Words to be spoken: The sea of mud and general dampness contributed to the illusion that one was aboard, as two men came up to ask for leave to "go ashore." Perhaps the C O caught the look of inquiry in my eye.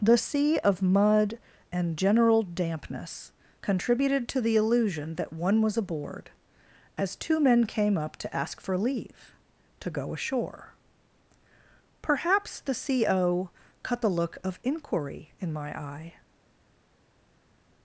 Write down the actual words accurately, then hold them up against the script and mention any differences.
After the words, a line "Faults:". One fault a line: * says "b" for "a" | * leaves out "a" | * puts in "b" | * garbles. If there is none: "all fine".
The sea of mud and general dampness contributed to the illusion that one was aboard, as two men came up to ask for leave to "go ashore." Perhaps the C O cut the look of inquiry in my eye.
Faults:
* says "cut" for "caught"